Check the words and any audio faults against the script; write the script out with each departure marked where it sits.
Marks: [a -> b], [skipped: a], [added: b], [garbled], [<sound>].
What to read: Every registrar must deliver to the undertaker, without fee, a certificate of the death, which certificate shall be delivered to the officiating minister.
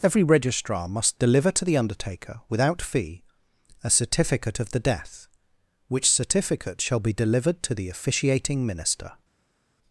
Every registrar must deliver to the undertaker, without fee, a certificate of the death, which certificate shall be delivered to the officiating minister.